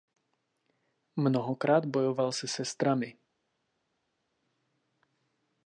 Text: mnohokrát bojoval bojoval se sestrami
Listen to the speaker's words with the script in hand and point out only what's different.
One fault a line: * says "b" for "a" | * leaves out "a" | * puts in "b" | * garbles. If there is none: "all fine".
* leaves out "bojoval"